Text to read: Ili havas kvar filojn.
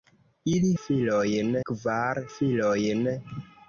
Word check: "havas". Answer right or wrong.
wrong